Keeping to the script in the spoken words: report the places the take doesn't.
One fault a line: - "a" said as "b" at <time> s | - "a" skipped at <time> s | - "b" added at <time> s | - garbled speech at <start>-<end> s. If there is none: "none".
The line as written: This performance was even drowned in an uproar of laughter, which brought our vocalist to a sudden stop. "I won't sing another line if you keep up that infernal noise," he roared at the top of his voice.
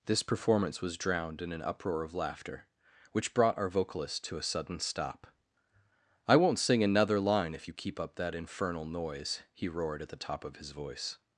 - "even" skipped at 1.0 s